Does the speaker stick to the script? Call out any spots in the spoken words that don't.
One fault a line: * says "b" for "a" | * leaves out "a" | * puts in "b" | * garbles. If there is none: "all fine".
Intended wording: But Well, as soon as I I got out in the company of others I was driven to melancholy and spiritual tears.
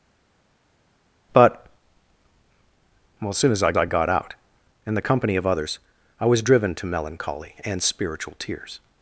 all fine